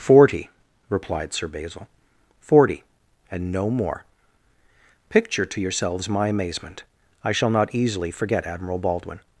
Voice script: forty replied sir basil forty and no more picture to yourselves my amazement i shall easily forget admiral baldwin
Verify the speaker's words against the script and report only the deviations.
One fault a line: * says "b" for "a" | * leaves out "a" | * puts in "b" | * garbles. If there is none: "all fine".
* puts in "not"